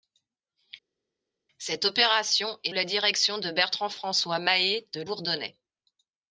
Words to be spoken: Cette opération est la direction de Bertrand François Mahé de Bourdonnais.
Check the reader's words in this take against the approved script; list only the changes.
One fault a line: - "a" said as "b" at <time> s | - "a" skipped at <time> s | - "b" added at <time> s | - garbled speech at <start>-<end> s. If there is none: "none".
none